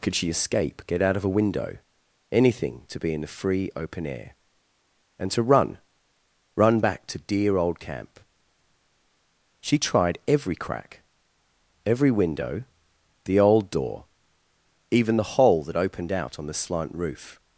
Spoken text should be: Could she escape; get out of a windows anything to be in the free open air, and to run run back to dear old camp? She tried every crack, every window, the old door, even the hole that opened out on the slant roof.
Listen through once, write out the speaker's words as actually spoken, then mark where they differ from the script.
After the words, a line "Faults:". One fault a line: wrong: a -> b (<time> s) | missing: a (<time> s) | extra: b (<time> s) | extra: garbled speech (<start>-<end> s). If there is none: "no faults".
Could she escape; get out of a window anything to be in the free open air, and to run run back to dear old camp? She tried every crack, every window, the old door, even the hole that opened out on the slant roof.
Faults:
wrong: windows -> window (1.3 s)